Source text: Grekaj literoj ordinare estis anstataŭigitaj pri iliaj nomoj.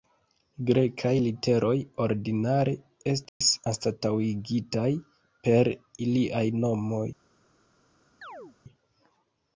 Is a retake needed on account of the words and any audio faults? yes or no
yes